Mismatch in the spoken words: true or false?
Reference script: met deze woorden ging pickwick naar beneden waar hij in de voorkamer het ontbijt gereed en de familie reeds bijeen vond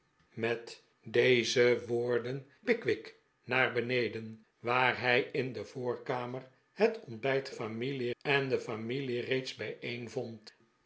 true